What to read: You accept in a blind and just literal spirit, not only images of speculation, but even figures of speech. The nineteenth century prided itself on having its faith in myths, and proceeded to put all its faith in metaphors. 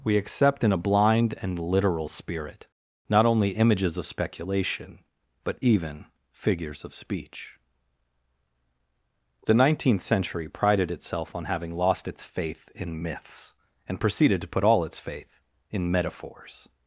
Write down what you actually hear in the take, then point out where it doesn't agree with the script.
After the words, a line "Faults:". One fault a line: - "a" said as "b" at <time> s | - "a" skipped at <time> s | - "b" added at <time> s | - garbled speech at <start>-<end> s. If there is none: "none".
We accept in a blind and literal spirit, not only images of speculation, but even figures of speech. The nineteenth century prided itself on having lost its faith in myths, and proceeded to put all its faith in metaphors.
Faults:
- "You" said as "We" at 0.0 s
- "just" skipped at 1.6 s
- "lost" added at 11.7 s